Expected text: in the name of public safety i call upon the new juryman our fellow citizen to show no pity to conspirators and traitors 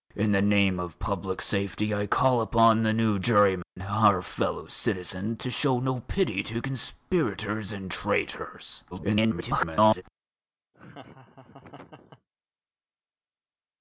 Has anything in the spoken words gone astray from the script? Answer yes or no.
yes